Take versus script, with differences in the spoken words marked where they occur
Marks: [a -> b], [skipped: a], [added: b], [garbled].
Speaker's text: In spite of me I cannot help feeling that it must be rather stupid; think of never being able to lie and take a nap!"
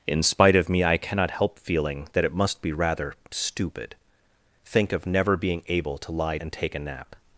In spite of me I cannot help feeling that it must be rather stupid; think of never being able to lie and take a nap!"